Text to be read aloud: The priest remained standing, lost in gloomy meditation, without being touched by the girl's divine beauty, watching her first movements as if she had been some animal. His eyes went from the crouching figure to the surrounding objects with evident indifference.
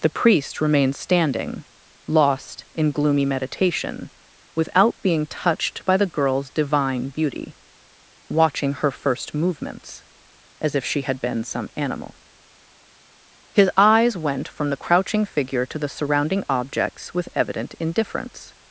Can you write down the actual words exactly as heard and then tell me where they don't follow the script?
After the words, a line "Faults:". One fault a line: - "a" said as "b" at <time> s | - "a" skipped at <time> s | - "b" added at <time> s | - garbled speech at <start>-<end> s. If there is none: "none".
The priest remained standing, lost in gloomy meditation, without being touched by the girl's divine beauty, watching her first movements as if she had been some animal. His eyes went from the crouching figure to the surrounding objects with evident indifference.
Faults:
none